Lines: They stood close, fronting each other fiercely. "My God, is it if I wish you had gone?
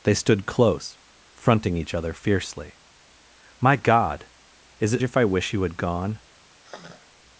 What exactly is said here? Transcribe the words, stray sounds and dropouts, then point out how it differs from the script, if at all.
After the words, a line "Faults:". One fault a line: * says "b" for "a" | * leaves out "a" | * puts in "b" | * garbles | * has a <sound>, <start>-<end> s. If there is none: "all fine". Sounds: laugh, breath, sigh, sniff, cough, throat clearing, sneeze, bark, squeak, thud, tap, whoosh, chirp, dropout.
They stood close, fronting each other fiercely. "My God, is it if I wish you had gone?
Faults:
* has a sigh, 6.6-7.1 s